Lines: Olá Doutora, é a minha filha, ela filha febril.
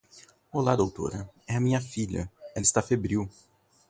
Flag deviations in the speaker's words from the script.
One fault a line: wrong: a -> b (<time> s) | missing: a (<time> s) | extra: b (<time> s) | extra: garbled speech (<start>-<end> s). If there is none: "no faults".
wrong: filha -> está (2.6 s)